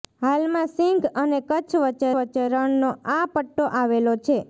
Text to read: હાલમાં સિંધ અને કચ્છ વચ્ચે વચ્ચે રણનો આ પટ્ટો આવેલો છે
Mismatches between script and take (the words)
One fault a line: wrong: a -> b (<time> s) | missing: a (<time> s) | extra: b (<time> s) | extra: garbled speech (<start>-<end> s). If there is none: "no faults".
no faults